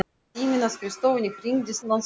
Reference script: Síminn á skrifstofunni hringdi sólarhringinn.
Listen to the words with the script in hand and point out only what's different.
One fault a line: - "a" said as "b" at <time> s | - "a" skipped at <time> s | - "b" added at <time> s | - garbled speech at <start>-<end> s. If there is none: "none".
none